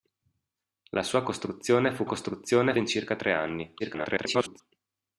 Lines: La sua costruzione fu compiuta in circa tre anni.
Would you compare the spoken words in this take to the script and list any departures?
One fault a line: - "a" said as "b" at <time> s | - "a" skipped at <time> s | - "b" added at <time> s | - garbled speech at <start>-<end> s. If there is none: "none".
- "compiuta" said as "costruzione" at 2.0 s
- garbled speech at 3.8-4.6 s